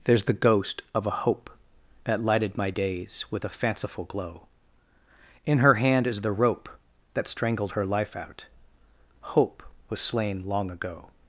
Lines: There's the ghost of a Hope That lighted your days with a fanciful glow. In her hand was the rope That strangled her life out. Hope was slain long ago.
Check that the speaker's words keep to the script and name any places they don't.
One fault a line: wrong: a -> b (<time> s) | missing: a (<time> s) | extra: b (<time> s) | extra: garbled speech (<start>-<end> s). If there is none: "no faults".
wrong: your -> my (2.6 s)
wrong: was -> is (6.1 s)